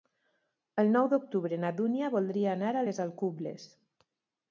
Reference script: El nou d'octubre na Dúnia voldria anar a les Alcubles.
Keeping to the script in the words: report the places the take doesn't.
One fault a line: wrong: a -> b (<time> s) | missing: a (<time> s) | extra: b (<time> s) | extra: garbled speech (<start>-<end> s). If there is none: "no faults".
no faults